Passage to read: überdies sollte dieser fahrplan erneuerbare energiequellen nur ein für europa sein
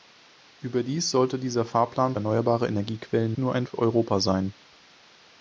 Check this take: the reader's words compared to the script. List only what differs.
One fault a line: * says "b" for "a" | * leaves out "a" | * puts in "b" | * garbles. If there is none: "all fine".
all fine